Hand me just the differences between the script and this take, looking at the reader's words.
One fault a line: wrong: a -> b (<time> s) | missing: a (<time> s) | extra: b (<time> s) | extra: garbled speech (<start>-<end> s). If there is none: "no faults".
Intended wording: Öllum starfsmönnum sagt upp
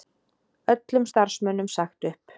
no faults